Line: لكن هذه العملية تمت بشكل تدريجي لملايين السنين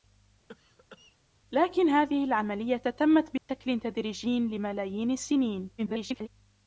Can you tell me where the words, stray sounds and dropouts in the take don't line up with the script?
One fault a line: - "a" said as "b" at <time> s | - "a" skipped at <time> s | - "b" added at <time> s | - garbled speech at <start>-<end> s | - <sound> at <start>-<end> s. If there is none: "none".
- cough at 0.5-1.2 s
- dropout at 3.4-3.5 s
- garbled speech at 5.8-6.3 s